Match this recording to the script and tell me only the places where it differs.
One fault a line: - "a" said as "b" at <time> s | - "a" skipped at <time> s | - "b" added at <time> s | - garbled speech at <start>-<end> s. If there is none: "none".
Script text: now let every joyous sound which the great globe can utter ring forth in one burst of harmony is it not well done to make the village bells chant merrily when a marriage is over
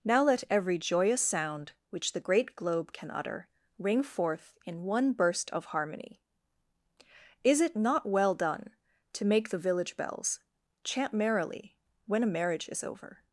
none